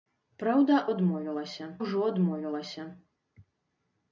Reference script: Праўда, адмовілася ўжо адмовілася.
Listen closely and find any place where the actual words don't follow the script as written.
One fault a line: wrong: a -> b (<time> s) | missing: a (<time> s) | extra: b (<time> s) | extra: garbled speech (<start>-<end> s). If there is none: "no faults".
no faults